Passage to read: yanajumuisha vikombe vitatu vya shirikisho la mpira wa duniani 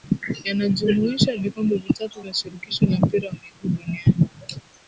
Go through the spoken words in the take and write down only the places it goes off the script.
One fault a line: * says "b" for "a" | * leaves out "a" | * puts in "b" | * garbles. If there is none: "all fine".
* puts in "miguu"